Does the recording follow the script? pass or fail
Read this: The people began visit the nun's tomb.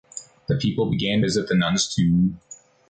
pass